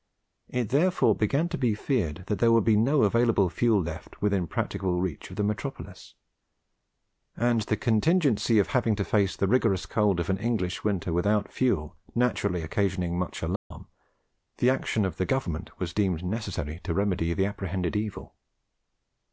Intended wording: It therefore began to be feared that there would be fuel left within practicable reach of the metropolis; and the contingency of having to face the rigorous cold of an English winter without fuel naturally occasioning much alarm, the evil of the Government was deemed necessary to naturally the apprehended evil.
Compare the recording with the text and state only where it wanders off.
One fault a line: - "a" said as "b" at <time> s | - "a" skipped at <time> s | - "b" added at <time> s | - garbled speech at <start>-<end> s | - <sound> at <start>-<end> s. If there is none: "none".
- "no available" added at 2.8 s
- dropout at 13.6-13.7 s
- "evil" said as "action" at 14.7 s
- "naturally" said as "remedy" at 16.9 s